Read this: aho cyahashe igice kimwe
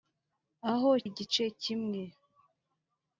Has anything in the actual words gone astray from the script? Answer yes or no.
yes